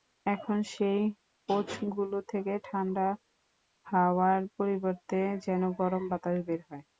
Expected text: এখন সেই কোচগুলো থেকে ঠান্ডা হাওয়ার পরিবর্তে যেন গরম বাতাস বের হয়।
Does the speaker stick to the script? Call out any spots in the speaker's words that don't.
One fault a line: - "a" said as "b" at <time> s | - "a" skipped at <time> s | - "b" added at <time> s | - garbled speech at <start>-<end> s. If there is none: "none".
none